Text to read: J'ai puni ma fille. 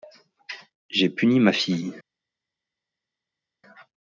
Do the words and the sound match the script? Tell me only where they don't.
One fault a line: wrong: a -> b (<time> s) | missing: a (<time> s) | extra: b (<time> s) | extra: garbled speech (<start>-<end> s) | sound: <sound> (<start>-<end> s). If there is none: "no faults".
no faults